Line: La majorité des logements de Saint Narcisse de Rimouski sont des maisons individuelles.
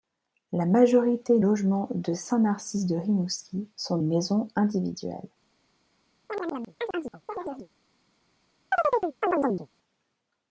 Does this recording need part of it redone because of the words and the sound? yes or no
yes